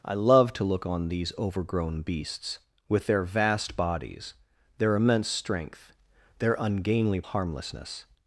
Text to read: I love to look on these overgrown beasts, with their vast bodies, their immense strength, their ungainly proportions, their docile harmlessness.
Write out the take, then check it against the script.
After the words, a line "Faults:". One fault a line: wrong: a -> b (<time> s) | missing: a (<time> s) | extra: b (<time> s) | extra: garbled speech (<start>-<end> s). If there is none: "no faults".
I love to look on these overgrown beasts, with their vast bodies, their immense strength, their ungainly harmlessness.
Faults:
missing: proportions their docile (7.2 s)